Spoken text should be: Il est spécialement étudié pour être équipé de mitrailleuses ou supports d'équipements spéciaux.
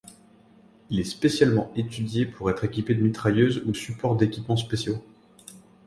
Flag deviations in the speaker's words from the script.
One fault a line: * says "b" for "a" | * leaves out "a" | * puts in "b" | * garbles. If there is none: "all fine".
all fine